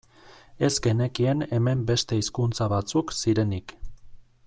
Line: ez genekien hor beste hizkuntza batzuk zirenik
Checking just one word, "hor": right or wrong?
wrong